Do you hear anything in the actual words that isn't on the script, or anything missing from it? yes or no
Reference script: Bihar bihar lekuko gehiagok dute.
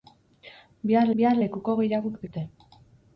no